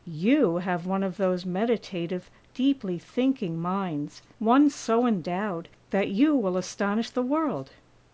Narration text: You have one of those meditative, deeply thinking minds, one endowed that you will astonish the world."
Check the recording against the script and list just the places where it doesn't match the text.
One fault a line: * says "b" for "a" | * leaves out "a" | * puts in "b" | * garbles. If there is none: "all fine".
* puts in "so"